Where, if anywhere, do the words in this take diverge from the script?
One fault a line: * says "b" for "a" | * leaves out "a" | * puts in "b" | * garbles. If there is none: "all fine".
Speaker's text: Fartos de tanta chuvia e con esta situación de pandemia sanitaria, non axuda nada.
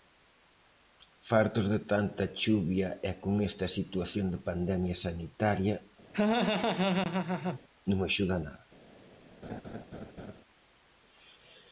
all fine